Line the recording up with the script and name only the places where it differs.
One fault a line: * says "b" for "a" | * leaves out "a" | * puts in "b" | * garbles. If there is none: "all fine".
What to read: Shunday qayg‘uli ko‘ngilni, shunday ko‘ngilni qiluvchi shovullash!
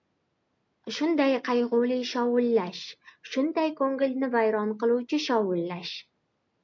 * says "shovullash" for "ko‘ngilni"
* puts in "vayron"